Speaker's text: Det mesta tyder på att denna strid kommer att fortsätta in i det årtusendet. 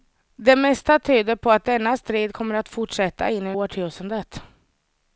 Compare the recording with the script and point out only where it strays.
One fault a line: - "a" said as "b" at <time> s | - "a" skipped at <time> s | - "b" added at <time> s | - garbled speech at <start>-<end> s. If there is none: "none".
none